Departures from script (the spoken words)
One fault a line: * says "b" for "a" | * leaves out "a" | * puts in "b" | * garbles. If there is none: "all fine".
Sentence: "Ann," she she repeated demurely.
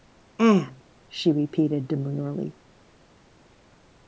* leaves out "she"